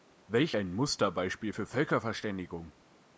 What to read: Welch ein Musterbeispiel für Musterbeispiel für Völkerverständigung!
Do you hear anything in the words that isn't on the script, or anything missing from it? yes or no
yes